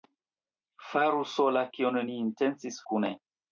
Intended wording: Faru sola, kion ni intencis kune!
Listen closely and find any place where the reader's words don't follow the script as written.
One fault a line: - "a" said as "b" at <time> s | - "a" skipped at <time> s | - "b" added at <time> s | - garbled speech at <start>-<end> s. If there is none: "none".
none